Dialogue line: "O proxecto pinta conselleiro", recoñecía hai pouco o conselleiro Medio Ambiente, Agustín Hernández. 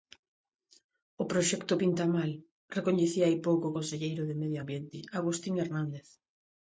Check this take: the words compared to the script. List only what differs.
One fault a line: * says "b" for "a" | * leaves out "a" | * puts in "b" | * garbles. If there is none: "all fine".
* says "mal" for "conselleiro"
* puts in "de"